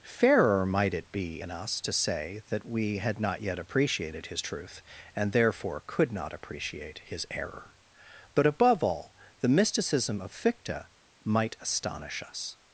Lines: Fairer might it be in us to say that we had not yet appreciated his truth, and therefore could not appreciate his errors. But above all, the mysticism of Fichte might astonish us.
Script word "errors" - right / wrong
wrong